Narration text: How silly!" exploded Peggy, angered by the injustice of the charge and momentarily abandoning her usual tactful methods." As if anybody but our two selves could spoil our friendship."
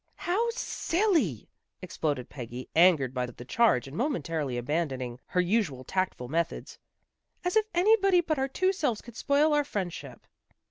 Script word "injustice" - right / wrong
wrong